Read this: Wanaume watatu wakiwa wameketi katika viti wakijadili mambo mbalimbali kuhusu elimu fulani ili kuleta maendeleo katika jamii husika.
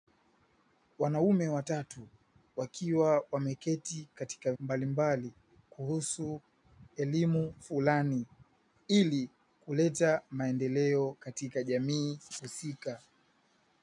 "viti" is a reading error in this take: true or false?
true